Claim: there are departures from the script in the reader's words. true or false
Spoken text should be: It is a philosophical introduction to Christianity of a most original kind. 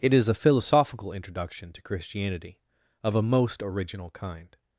false